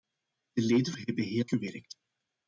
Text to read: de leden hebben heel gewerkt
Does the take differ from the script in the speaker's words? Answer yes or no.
no